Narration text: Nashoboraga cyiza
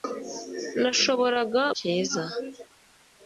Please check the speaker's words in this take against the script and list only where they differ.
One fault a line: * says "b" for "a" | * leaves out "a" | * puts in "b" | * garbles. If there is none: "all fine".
all fine